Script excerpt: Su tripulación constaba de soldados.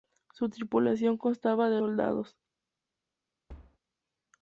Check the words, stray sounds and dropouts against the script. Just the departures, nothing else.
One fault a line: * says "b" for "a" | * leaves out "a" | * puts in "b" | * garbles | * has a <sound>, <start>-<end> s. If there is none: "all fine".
* has a thud, 3.5-3.8 s